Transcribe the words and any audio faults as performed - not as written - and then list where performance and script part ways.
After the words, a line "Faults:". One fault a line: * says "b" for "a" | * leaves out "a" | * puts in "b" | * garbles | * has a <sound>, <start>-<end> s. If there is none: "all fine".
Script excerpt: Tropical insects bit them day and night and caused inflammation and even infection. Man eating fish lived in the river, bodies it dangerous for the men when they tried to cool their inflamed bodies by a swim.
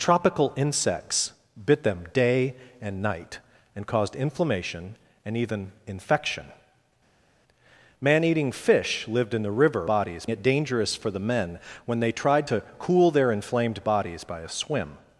Tropical insects bit them day and night and caused inflammation and even infection. Man eating fish lived in the river, bodies it dangerous for the men when they tried to cool their inflamed bodies by a swim.
Faults:
all fine